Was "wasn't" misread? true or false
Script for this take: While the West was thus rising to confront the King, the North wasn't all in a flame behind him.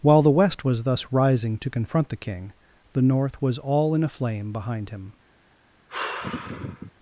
true